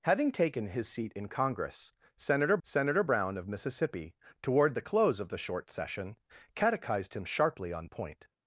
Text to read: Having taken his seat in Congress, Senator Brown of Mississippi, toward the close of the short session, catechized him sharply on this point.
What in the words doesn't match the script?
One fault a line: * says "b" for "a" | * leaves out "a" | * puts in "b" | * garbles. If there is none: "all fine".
* puts in "Senator"
* leaves out "this"